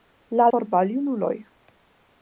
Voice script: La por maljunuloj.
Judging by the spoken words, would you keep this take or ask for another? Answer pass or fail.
pass